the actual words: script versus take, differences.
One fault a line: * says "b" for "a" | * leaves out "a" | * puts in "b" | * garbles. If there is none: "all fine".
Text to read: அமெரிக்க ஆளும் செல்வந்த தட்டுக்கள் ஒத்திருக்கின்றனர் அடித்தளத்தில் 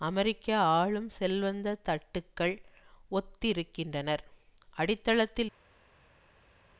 all fine